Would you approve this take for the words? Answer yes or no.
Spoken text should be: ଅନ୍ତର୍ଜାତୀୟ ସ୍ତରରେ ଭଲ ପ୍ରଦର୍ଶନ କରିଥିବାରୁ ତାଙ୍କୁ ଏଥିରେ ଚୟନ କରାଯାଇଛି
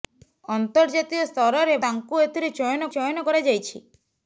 no